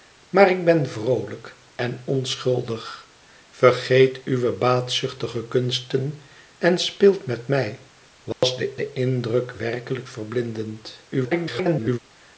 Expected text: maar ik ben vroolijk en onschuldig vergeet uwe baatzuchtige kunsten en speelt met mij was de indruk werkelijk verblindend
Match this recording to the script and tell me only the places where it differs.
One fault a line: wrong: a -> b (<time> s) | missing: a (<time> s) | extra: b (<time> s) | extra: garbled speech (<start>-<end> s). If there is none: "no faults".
extra: de (8.8 s)
extra: garbled speech (11.1-12.0 s)